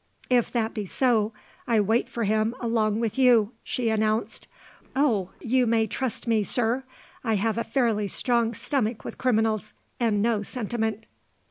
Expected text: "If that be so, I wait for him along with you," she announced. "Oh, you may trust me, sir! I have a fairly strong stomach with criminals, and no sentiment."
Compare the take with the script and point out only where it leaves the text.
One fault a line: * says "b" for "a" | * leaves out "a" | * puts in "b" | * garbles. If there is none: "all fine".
all fine